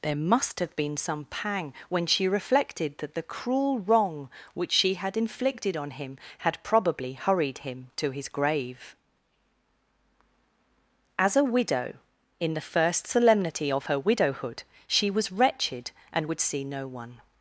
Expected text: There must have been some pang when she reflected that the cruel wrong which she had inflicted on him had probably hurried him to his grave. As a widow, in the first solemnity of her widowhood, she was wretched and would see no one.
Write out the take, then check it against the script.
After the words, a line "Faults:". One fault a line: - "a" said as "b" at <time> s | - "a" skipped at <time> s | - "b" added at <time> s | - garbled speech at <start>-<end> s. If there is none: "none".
There must have been some pang when she reflected that the cruel wrong which she had inflicted on him had probably hurried him to his grave. As a widow, in the first solemnity of her widowhood, she was wretched and would see no one.
Faults:
none